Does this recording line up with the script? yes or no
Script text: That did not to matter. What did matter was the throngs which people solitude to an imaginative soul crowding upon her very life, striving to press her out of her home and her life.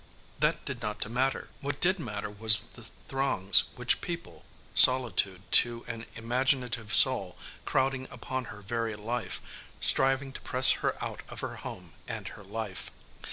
yes